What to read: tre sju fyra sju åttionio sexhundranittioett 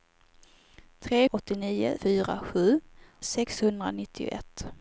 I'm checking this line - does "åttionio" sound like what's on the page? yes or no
no